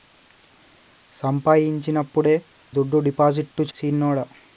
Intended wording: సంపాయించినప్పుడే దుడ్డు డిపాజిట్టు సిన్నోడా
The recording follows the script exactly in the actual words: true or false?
true